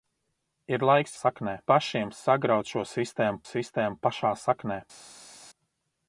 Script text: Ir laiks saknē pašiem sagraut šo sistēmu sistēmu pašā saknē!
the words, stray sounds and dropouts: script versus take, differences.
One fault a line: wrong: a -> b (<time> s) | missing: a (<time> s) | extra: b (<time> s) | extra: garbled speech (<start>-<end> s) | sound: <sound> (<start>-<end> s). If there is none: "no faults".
no faults